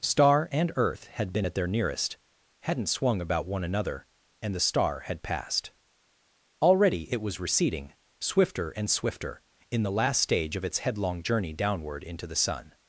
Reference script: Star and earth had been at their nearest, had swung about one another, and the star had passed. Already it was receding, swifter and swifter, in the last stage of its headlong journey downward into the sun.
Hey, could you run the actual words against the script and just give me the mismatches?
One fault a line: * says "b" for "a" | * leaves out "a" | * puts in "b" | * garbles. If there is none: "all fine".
* says "hadn't" for "had"